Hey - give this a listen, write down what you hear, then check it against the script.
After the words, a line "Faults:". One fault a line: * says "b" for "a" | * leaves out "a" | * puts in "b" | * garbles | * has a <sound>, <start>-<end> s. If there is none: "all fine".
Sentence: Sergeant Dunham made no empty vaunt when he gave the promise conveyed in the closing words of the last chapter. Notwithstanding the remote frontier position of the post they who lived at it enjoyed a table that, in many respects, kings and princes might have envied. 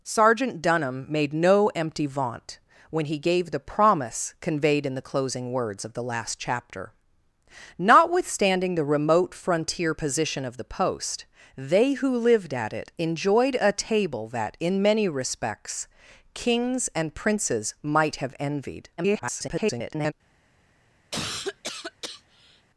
Sergeant Dunham made no empty vaunt when he gave the promise conveyed in the closing words of the last chapter. Notwithstanding the remote frontier position of the post they who lived at it enjoyed a table that, in many respects, kings and princes might have envied. [garbled]
Faults:
* garbles
* has a cough, 21.1-22.7 s